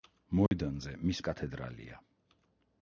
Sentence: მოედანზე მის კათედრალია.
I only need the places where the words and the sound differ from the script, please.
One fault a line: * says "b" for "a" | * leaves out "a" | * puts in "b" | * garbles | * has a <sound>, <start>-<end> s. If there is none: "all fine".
* has a dropout, 0.5-0.5 s